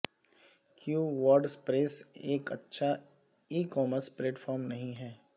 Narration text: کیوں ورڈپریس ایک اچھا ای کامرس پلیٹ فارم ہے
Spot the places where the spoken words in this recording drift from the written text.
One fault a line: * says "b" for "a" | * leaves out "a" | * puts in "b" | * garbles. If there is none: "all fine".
* puts in "نہیں"